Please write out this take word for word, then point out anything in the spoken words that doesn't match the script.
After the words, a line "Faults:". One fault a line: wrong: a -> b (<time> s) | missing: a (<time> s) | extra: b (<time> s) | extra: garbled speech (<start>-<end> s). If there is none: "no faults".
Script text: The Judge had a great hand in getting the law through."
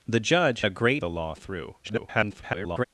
The Judge a great the law through." [garbled]
Faults:
missing: had (0.6 s)
missing: hand in getting (1.0 s)
extra: garbled speech (1.8-2.8 s)